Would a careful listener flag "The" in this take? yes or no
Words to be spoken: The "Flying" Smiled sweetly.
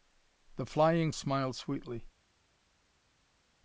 no